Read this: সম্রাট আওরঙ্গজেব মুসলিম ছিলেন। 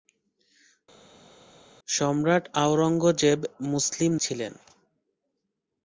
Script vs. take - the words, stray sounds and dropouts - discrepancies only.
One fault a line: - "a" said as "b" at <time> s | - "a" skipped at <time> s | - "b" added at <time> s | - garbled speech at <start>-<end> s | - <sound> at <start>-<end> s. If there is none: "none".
none